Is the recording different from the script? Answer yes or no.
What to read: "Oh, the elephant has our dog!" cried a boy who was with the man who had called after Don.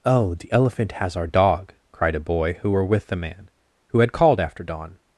yes